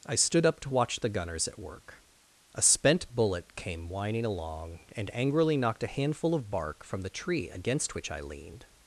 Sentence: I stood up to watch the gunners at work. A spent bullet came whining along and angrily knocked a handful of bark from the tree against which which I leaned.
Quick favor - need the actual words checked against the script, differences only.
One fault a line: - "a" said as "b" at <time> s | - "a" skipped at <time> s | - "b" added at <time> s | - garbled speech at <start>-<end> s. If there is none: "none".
- "which" skipped at 8.1 s